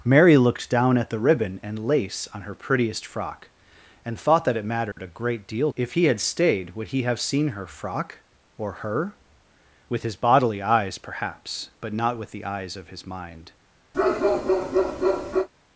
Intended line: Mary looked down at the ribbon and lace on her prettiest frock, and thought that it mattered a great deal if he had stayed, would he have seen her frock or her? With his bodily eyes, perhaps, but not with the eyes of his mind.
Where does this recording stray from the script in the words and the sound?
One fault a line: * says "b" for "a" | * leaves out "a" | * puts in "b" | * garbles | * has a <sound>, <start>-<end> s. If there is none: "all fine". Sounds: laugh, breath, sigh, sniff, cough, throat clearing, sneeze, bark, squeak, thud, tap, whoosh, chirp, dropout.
* has a dropout, 4.9-5.0 s
* has a bark, 13.9-15.5 s